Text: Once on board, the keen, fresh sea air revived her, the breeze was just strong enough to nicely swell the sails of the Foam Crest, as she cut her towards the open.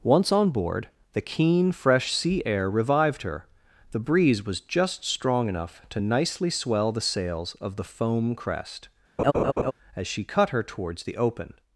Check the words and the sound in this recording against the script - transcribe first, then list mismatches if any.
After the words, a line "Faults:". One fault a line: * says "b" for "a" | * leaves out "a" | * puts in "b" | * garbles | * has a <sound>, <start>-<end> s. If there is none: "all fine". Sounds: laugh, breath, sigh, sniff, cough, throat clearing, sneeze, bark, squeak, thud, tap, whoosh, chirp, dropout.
Once on board, the keen, fresh sea air revived her, the breeze was just strong enough to nicely swell the sails of the Foam Crest, as she cut her towards the open.
Faults:
* has a laugh, 9.2-9.7 s